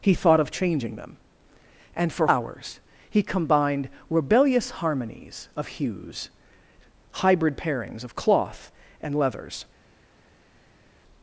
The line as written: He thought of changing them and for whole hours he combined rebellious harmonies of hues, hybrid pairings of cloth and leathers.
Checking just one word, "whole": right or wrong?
wrong